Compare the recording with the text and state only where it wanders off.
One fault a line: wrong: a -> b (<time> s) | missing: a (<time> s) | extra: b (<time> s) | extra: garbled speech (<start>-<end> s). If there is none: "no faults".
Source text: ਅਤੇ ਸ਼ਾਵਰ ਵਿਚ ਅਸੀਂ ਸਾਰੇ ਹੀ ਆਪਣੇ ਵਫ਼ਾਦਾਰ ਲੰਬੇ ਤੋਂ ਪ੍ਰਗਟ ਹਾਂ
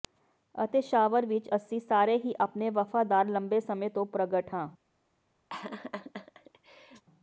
extra: ਸਮੇਂ (3.6 s)